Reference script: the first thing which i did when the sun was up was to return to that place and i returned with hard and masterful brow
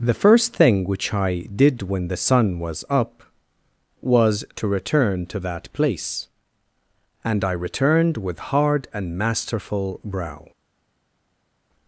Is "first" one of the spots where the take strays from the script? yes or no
no